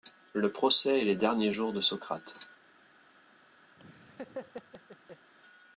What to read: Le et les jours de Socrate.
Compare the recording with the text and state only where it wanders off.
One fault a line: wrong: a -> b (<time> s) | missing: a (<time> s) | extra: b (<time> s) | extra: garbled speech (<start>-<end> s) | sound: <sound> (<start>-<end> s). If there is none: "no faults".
extra: procès (0.5 s)
extra: derniers (1.1 s)
sound: laugh (3.8-5.3 s)